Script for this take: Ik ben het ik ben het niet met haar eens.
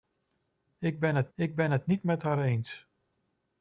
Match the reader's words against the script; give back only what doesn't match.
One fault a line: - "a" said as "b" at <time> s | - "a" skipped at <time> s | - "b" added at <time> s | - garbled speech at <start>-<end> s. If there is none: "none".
none